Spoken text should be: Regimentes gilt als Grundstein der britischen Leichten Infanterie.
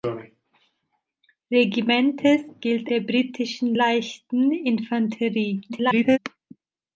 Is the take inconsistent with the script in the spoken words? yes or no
yes